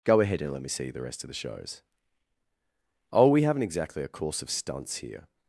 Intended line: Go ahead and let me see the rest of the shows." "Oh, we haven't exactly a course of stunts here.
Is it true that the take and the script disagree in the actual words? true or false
false